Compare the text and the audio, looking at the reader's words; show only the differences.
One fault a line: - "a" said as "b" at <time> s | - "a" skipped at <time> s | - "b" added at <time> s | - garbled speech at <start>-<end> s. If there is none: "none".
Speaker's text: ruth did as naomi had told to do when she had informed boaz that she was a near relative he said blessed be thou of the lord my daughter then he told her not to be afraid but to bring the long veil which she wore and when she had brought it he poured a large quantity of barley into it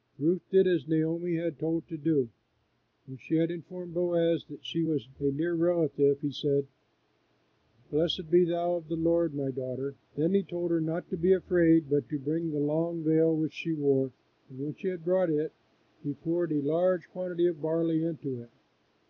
none